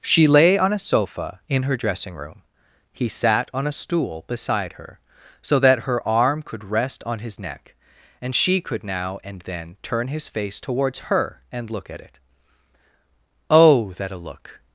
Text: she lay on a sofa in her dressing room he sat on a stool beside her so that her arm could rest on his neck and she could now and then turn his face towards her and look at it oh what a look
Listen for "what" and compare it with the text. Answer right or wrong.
wrong